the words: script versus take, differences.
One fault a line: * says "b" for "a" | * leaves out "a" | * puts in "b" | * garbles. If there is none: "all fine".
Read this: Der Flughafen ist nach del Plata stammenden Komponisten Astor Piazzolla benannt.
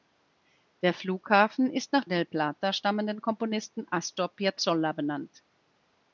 all fine